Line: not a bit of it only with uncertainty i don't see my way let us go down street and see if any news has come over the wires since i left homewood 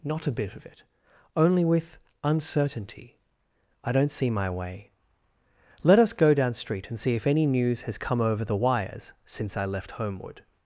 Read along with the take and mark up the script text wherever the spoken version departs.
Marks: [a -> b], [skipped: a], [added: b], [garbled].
not a bit of it only with uncertainty i don't see my way let us go down street and see if any news has come over the wires since i left homewood